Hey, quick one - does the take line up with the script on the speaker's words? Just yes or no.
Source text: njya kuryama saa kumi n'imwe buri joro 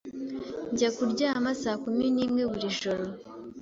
yes